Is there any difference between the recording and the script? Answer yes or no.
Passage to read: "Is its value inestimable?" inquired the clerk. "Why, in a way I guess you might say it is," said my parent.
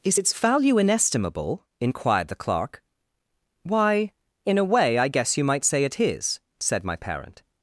no